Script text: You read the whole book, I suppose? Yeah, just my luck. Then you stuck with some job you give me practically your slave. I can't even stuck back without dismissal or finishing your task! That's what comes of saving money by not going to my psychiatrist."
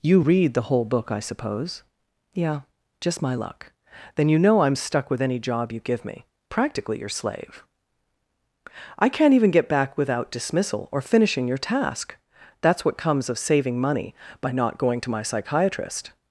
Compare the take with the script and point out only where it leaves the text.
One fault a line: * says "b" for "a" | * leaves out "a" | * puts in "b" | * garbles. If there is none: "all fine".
* puts in "know I'm"
* says "any" for "some"
* says "get" for "stuck"